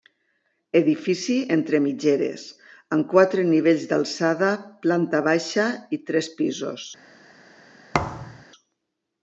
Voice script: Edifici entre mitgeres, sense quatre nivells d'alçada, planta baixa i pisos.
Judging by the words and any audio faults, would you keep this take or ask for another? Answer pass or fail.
fail